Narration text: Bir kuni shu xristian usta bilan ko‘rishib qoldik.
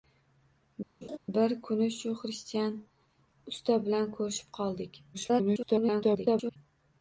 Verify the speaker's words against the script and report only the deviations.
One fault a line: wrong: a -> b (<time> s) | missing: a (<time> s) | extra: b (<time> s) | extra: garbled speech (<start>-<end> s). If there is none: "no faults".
extra: garbled speech (5.1-6.6 s)